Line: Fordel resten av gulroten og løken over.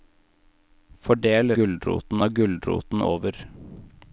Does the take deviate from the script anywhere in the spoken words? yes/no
yes